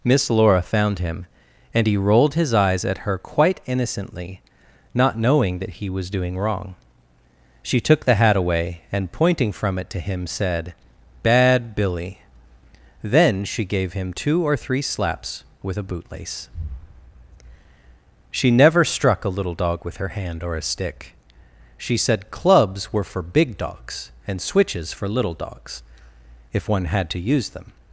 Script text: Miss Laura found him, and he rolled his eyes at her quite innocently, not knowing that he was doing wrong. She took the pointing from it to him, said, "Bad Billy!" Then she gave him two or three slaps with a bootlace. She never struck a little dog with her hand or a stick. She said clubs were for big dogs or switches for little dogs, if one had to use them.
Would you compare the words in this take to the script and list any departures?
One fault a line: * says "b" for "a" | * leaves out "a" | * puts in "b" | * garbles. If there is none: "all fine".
* puts in "hat away and"
* says "and" for "or"